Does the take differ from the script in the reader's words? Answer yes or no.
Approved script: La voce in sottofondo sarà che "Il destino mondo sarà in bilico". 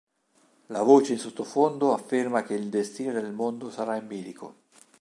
yes